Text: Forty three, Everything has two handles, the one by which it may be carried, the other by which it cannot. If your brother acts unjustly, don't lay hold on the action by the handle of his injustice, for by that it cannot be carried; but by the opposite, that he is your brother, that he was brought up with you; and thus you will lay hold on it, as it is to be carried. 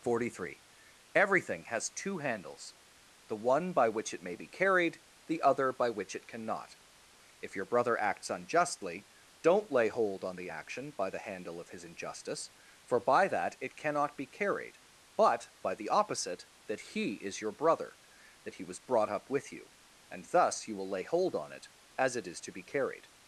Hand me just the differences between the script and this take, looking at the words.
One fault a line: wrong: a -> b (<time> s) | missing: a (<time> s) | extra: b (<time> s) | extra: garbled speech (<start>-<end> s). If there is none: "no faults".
no faults